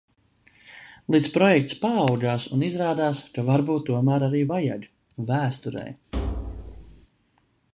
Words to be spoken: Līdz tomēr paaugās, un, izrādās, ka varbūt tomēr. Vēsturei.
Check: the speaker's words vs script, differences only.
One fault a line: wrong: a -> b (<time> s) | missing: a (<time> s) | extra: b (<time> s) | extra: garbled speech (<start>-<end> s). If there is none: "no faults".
wrong: tomēr -> projekts (1.4 s)
extra: arī vajag (4.3 s)